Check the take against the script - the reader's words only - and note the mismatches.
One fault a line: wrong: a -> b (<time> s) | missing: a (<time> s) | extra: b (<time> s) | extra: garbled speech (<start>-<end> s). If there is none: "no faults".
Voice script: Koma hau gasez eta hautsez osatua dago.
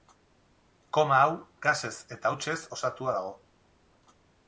no faults